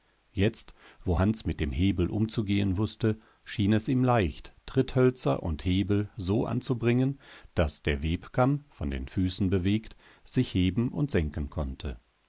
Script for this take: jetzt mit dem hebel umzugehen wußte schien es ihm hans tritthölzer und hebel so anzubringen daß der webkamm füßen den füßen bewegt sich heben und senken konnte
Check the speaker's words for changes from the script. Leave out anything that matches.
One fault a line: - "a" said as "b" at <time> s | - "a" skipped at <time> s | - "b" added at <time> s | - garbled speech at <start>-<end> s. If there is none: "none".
- "wo hans" added at 1.0 s
- "hans" said as "leicht" at 4.0 s
- "füßen" said as "von" at 8.7 s